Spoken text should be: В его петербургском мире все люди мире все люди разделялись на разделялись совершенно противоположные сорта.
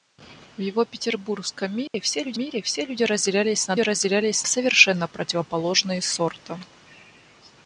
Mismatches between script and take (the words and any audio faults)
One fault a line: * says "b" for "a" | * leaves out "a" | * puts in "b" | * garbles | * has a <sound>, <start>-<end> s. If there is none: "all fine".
* has a dropout, 1.9-1.9 s